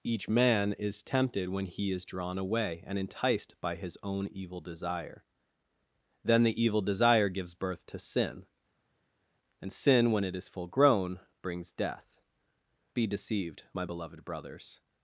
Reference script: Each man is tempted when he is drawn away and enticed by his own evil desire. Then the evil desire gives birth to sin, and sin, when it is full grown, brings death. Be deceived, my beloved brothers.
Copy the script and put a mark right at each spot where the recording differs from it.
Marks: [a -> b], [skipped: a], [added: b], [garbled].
Each man is tempted when he is drawn away and enticed by his own evil desire. Then the evil desire gives birth to sin, and sin, when it is full grown, brings death. Be deceived, my beloved brothers.